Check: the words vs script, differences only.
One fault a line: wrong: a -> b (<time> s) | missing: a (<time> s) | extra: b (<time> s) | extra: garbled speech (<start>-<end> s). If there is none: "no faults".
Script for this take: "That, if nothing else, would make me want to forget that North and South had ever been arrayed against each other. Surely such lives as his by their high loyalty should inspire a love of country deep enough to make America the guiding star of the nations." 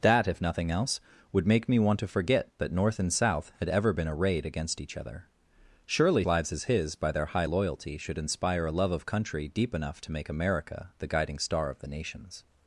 missing: such (6.2 s)